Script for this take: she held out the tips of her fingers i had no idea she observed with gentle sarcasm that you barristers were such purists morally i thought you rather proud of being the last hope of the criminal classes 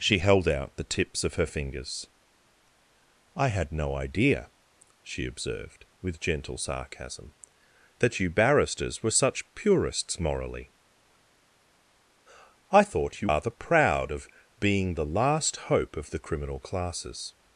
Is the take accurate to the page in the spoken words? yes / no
yes